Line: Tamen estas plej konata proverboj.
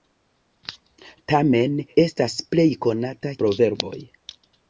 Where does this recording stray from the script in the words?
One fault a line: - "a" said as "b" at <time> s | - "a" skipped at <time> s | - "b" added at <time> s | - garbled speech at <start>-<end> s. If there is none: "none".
none